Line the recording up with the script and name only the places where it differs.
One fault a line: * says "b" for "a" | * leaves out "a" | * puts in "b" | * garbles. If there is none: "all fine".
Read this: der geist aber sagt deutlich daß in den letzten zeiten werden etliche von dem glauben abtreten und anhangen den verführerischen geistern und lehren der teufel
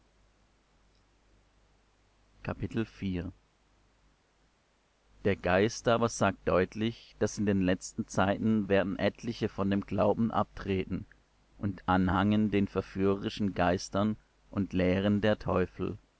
all fine